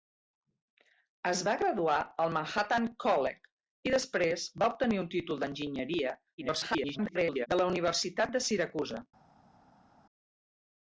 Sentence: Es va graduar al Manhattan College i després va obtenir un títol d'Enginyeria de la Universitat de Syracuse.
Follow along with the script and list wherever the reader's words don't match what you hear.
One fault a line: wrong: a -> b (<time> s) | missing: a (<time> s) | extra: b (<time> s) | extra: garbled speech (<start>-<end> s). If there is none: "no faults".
extra: garbled speech (6.4-7.5 s)